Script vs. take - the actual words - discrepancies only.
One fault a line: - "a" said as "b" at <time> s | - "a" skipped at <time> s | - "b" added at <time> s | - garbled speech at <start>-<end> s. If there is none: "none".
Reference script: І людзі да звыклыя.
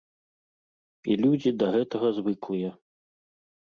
- "гэтага" added at 1.8 s